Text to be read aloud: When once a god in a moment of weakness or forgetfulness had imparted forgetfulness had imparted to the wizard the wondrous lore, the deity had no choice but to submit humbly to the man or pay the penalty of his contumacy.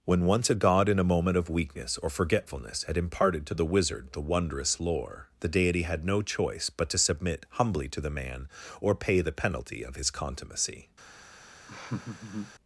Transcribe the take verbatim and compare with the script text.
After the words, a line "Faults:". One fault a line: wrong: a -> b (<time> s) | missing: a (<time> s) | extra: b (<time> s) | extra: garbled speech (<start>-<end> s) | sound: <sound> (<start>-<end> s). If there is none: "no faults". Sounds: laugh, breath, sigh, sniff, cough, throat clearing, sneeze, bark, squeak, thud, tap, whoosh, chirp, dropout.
When once a god in a moment of weakness or forgetfulness had imparted to the wizard the wondrous lore, the deity had no choice but to submit humbly to the man or pay the penalty of his contumacy.
Faults:
missing: forgetfulness had imparted (3.5 s)
sound: laugh (11.7-12.6 s)